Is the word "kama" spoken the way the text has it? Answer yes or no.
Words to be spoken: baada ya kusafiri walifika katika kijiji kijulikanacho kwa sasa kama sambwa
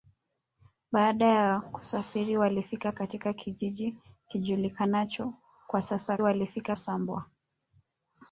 no